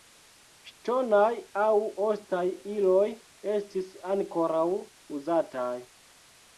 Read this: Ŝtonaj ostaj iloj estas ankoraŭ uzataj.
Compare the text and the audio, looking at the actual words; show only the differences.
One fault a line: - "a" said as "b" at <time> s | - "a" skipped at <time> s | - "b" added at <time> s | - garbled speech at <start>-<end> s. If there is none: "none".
- "aŭ" added at 1.6 s
- "estas" said as "estis" at 3.6 s